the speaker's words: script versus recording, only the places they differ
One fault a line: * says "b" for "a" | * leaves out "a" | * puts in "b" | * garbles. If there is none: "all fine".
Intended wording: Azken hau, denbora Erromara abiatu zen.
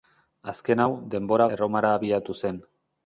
all fine